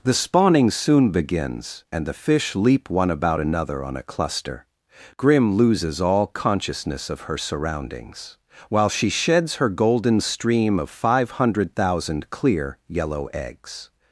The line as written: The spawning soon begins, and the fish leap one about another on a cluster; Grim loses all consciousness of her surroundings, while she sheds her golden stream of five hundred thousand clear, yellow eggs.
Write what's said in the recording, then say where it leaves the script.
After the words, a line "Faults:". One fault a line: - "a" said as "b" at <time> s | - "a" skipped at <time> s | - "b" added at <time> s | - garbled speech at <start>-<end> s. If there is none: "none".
The spawning soon begins, and the fish leap one about another on a cluster; Grim loses all consciousness of her surroundings, while she sheds her golden stream of five hundred thousand clear, yellow eggs.
Faults:
none